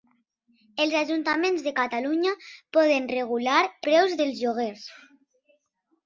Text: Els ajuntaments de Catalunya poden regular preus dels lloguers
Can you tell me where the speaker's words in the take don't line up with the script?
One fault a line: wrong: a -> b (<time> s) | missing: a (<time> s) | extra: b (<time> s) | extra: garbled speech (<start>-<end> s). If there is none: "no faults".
no faults